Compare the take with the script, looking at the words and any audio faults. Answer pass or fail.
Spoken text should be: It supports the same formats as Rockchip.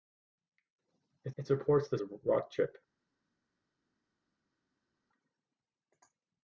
fail